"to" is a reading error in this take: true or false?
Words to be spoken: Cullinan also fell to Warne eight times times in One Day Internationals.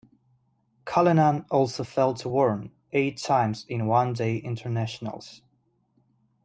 false